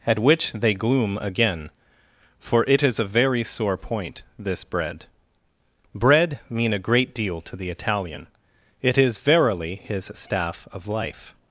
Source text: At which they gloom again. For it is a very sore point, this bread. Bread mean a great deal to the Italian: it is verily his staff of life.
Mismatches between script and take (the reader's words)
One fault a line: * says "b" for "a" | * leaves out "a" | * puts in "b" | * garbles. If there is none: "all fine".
all fine